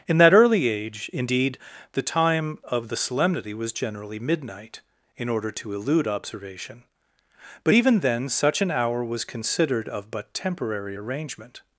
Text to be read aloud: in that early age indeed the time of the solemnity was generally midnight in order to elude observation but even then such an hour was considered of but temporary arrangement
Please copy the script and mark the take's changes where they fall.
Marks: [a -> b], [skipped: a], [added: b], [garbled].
in that early age indeed the time of the solemnity was generally midnight in order to elude observation but even then such an hour was considered of but temporary arrangement